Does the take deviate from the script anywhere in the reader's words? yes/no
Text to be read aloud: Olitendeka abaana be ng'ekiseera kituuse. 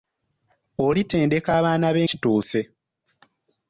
yes